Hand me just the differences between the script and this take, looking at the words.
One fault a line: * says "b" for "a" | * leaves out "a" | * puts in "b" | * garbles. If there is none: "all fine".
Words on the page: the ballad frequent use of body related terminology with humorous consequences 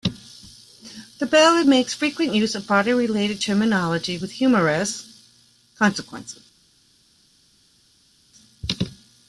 * puts in "makes"